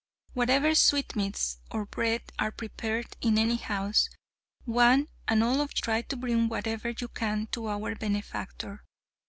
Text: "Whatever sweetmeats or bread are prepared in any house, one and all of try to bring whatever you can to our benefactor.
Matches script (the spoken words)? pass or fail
pass